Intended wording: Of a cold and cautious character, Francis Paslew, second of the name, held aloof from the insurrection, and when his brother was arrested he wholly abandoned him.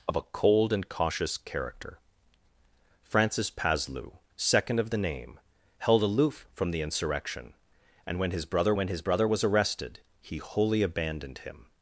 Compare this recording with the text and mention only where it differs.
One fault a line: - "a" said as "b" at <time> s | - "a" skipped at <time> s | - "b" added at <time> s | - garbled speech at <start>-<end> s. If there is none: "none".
- "when his brother" added at 8.8 s